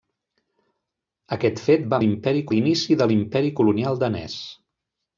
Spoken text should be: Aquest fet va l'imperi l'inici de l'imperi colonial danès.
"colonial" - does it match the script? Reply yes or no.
yes